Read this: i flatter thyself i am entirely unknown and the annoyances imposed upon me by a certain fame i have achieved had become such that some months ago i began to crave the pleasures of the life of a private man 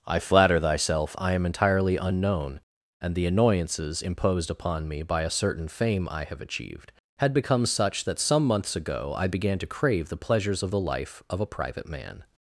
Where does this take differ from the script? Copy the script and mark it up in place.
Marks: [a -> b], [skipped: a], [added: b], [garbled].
i flatter thyself i am entirely unknown and the annoyances imposed upon me by a certain fame i have achieved had become such that some months ago i began to crave the pleasures of the life of a private man